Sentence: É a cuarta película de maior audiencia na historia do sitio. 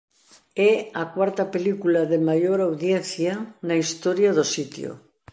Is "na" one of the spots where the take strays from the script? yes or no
no